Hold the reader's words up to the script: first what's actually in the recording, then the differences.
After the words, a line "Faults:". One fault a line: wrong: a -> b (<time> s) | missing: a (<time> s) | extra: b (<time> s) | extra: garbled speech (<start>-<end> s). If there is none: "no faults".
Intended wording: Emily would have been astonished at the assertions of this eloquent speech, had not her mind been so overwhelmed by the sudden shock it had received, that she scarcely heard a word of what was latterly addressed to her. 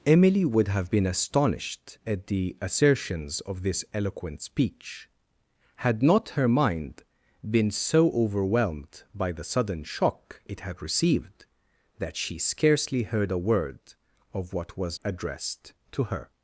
Emily would have been astonished at the assertions of this eloquent speech, had not her mind been so overwhelmed by the sudden shock it had received, that she scarcely heard a word of what was addressed to her.
Faults:
missing: latterly (15.0 s)